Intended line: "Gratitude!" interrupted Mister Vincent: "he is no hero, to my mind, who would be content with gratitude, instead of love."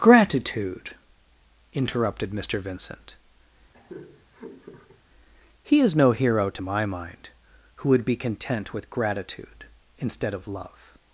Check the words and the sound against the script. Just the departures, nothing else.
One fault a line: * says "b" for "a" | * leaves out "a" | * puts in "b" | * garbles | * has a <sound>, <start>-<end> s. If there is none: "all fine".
* has a laugh, 3.7-5.0 s